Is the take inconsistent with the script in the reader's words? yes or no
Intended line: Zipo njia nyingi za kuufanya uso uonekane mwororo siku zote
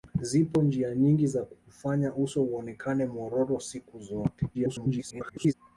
yes